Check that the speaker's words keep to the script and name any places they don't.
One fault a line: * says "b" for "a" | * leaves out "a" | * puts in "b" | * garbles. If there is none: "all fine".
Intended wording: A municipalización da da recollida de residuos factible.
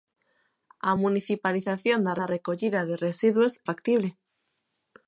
all fine